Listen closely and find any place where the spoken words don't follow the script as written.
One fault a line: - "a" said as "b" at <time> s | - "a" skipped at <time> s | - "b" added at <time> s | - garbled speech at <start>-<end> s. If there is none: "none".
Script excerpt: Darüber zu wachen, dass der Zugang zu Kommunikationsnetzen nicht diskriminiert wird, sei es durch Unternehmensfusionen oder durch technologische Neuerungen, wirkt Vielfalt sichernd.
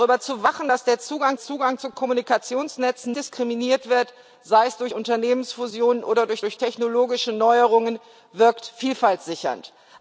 - "Zugang" added at 1.4 s
- "nicht" skipped at 3.2 s
- "durch" added at 6.4 s